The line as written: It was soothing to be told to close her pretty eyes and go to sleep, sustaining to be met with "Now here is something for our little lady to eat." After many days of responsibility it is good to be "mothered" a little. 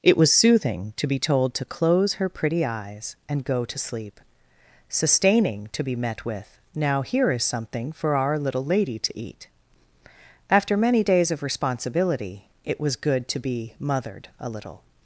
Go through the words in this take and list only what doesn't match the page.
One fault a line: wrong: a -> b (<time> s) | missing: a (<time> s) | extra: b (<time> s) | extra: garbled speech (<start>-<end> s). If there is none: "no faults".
wrong: is -> was (12.8 s)